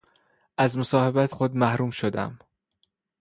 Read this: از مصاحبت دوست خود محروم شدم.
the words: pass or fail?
fail